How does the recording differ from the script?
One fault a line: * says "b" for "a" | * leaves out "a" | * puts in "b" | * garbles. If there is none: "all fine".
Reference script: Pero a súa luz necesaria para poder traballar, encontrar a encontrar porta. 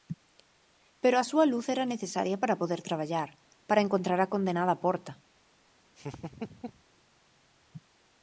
* puts in "era"
* puts in "para"
* says "condenada" for "encontrar"